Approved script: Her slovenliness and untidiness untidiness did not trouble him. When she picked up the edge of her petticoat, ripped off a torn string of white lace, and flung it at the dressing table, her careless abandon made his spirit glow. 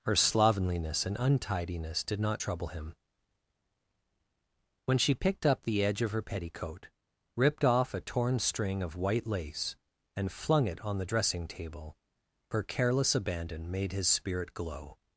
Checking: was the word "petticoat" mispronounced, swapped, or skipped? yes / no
no